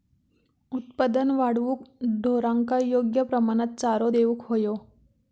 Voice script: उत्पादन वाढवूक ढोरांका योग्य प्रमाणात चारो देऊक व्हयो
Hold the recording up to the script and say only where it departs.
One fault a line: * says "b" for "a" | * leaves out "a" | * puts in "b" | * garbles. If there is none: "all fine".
all fine